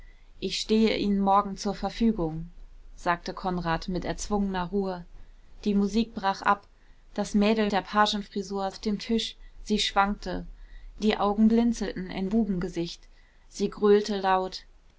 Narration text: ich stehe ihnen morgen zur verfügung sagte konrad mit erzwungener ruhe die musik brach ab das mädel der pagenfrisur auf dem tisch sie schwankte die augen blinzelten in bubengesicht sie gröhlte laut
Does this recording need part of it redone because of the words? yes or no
no